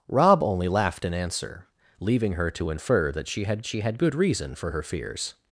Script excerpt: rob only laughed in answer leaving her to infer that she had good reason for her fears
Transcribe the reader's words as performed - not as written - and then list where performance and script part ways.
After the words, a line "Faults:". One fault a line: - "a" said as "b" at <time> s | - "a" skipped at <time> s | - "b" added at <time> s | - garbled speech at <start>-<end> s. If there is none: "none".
rob only laughed in answer leaving her to infer that she had she had good reason for her fears
Faults:
- "she had" added at 3.6 s